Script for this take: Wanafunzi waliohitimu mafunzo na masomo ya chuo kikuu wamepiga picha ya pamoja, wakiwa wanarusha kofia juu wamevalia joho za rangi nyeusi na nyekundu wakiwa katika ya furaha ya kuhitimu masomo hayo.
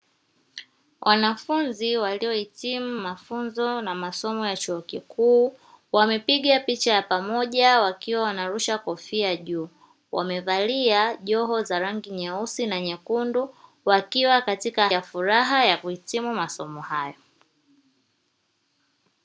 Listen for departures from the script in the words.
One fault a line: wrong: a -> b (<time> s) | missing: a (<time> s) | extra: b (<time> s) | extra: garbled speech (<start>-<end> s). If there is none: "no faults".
no faults